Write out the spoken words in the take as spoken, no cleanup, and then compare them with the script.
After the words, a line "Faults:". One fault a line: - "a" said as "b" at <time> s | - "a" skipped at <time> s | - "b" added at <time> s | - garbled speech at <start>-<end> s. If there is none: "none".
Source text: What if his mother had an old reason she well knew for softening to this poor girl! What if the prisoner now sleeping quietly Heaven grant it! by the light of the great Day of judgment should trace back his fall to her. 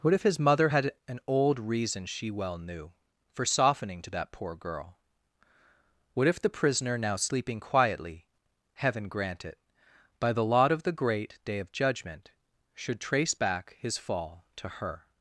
What if his mother had an old reason she well knew for softening to that poor girl! What if the prisoner now sleeping quietly Heaven grant it! by the lot of the great Day of judgment should trace back his fall to her.
Faults:
- "this" said as "that" at 4.1 s
- "light" said as "lot" at 10.4 s